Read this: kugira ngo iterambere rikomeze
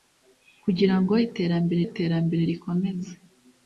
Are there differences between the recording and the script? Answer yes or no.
yes